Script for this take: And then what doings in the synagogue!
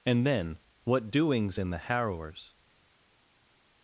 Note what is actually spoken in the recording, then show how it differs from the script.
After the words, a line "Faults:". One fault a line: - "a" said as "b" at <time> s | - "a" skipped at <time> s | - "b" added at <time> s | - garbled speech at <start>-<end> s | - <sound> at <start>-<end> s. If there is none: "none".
And then what doings in the harrowers!
Faults:
- "synagogue" said as "harrowers" at 1.8 s